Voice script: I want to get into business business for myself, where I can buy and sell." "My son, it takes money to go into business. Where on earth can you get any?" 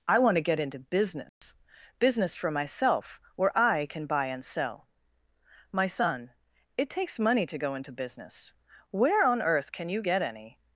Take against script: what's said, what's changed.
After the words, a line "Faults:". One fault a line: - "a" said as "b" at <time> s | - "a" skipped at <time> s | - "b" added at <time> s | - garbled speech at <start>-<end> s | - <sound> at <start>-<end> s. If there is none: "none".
I want to get into business business for myself, where I can buy and sell." "My son, it takes money to go into business. Where on earth can you get any?"
Faults:
- dropout at 1.3-1.4 s